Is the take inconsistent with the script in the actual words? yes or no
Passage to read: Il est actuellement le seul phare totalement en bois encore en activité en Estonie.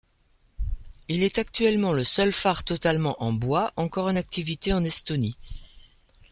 no